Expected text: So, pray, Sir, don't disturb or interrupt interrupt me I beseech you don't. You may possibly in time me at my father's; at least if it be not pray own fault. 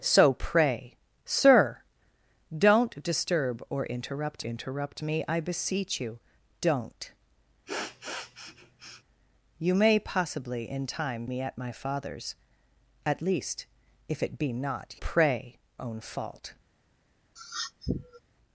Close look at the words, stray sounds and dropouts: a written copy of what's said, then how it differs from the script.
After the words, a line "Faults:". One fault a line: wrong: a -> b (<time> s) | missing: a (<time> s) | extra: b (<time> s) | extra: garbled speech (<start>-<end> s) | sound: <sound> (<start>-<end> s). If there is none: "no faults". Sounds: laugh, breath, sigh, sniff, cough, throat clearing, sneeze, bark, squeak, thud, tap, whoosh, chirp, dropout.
So, pray, Sir, don't disturb or interrupt interrupt me I beseech you don't. You may possibly in time me at my father's; at least if it be not pray own fault.
Faults:
sound: sniff (7.7-9.0 s)
sound: sniff (17.4-18.2 s)